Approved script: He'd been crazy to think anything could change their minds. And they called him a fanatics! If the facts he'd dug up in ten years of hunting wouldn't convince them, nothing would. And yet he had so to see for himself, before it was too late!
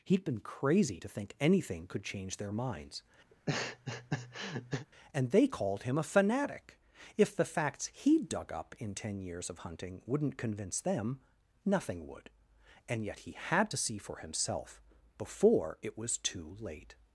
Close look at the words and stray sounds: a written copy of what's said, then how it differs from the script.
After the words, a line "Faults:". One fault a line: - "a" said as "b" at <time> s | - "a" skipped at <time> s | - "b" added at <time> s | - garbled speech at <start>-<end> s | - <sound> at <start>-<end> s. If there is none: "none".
He'd been crazy to think anything could change their minds. And they called him a fanatic! If the facts he'd dug up in ten years of hunting wouldn't convince them, nothing would. And yet he had to see for himself, before it was too late!
Faults:
- laugh at 3.3-4.9 s
- "fanatics" said as "fanatic" at 6.0 s
- "so" skipped at 13.7 s